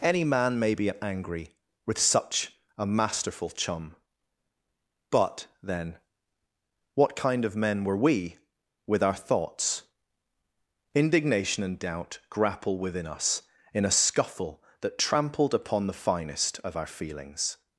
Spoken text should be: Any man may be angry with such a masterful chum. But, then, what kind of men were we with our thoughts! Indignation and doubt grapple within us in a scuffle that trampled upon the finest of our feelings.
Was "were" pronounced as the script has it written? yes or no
yes